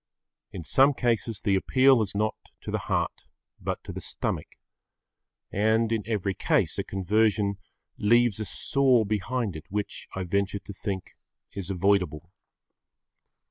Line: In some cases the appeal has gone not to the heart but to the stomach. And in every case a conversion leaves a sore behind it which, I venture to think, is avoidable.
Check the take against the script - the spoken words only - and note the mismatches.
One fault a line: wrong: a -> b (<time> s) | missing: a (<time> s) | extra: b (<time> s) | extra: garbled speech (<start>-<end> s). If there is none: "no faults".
missing: gone (2.1 s)